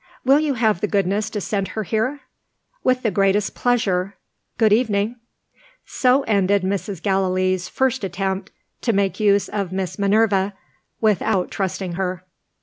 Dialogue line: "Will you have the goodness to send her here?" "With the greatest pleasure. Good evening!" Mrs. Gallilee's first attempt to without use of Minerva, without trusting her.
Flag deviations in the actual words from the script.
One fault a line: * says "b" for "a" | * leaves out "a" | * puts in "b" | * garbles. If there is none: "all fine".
* puts in "So ended"
* says "make" for "without"
* puts in "Miss"